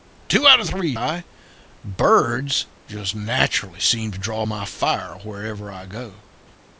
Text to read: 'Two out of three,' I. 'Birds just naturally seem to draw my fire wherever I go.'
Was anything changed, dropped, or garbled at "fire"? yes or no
no